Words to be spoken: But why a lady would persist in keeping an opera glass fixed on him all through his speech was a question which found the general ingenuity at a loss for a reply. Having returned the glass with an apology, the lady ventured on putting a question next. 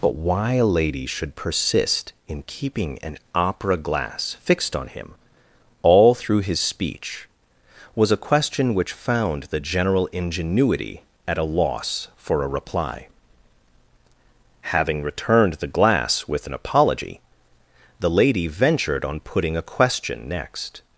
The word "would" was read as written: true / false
false